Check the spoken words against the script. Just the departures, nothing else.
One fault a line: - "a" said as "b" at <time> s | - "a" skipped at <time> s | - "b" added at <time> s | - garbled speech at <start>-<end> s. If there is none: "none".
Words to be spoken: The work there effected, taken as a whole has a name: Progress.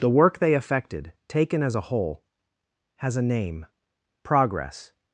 - "there" said as "they" at 0.4 s